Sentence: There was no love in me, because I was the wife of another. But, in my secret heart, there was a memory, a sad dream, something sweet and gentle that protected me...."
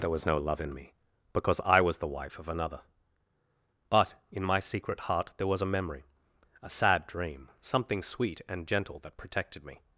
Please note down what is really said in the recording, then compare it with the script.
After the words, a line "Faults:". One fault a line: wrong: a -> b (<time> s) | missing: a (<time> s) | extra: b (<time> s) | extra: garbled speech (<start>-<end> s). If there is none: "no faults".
There was no love in me, because I was the wife of another. But, in my secret heart, there was a memory, a sad dream, something sweet and gentle that protected me...."
Faults:
no faults